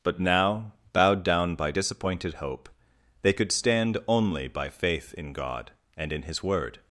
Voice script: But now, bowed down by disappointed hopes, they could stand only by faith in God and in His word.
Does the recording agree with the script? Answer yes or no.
no